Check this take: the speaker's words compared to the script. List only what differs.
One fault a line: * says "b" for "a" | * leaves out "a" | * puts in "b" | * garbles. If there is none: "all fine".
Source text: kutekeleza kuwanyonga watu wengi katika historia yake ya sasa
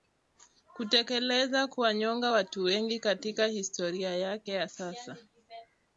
all fine